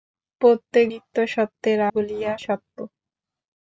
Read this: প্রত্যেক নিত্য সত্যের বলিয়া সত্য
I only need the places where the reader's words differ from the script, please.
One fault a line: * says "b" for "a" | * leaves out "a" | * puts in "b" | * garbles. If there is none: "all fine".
all fine